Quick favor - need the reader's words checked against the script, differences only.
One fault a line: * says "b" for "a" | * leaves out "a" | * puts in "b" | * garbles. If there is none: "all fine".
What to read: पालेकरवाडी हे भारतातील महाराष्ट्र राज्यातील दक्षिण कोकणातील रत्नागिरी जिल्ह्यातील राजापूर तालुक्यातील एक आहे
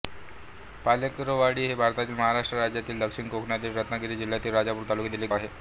all fine